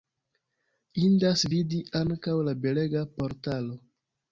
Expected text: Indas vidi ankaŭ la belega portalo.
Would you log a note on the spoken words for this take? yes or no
no